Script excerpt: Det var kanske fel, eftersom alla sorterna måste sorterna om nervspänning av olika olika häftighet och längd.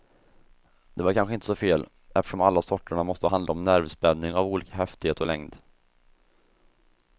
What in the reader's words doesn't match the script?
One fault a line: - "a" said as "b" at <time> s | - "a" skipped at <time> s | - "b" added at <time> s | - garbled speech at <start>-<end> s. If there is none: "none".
- "inte så" added at 1.3 s
- "sorterna" said as "handla" at 3.2 s
- "olika" skipped at 4.7 s